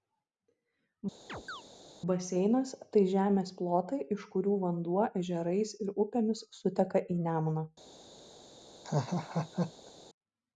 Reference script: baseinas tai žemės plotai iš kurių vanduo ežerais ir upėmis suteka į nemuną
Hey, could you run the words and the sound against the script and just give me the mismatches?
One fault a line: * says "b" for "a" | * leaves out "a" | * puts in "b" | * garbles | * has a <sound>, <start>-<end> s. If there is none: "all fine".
* has a chirp, 1.3-1.6 s
* has a laugh, 8.8-9.9 s